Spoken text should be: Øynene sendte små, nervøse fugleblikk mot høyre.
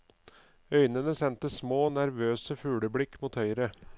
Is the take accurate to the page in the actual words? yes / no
yes